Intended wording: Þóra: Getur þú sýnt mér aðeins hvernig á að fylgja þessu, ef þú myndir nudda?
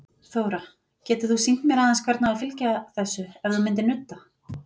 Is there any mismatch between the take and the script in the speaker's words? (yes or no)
no